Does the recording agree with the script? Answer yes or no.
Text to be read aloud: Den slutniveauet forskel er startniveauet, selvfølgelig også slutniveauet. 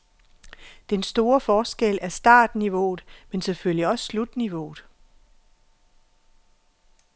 no